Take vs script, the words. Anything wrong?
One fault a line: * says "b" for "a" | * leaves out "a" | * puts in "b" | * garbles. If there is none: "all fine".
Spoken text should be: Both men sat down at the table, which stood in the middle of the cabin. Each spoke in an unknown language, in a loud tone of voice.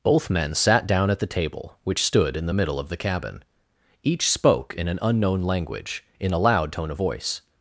all fine